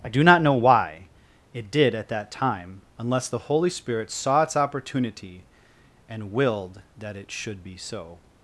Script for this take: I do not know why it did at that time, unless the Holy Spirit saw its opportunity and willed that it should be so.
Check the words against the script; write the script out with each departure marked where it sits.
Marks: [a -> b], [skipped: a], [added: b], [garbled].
I do not know why it did at that time, unless the Holy Spirit saw its opportunity and willed that it should be so.